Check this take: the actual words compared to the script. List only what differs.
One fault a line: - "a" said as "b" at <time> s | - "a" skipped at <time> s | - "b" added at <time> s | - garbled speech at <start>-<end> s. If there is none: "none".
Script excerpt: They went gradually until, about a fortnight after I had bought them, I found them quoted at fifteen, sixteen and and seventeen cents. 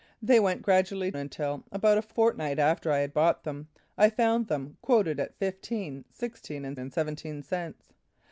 none